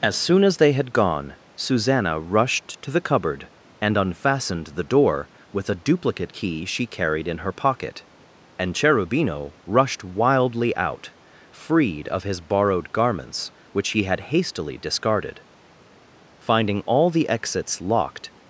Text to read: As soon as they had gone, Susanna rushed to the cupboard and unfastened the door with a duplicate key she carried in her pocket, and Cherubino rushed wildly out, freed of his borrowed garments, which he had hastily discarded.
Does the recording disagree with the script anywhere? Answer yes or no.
yes